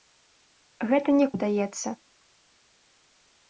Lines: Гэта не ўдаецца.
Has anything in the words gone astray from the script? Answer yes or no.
no